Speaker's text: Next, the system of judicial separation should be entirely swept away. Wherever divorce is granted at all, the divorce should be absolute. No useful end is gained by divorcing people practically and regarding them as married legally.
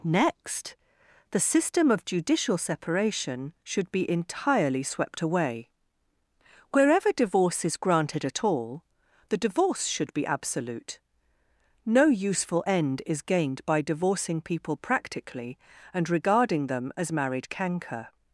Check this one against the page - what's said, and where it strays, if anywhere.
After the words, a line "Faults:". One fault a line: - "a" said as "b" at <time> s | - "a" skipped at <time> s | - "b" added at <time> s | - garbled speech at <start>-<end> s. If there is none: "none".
Next, the system of judicial separation should be entirely swept away. Wherever divorce is granted at all, the divorce should be absolute. No useful end is gained by divorcing people practically and regarding them as married canker.
Faults:
- "legally" said as "canker" at 17.5 s